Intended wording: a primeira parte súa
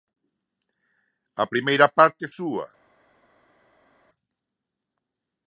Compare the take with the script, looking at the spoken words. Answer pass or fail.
pass